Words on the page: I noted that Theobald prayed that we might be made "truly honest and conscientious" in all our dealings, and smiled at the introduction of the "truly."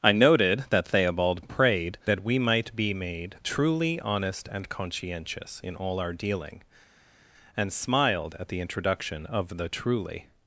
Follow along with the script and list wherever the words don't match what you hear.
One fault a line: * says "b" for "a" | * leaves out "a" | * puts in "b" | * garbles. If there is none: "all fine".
* says "dealing" for "dealings"